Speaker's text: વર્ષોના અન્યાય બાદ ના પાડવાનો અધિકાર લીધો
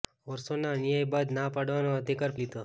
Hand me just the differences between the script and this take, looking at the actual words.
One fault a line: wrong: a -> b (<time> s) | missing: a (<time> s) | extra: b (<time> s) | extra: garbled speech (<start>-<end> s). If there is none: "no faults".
no faults